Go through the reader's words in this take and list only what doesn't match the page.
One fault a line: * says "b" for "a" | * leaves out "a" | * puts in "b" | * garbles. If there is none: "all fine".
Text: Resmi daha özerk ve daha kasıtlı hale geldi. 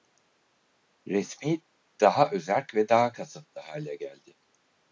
all fine